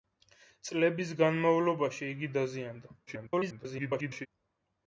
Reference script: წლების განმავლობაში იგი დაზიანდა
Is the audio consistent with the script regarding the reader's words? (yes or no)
no